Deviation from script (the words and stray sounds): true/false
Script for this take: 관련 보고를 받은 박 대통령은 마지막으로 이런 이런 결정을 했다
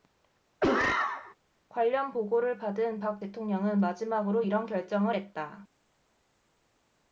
true